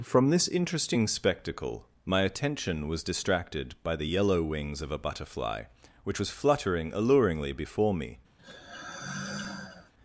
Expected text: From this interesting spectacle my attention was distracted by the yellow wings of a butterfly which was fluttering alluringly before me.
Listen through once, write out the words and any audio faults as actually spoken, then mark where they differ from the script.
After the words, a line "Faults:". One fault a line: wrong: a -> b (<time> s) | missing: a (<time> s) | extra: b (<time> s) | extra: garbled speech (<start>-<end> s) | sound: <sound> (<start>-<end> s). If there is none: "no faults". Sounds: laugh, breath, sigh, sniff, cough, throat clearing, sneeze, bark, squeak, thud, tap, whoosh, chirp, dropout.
From this interesting spectacle my attention was distracted by the yellow wings of a butterfly which was fluttering alluringly before me.
Faults:
sound: sigh (8.4-9.9 s)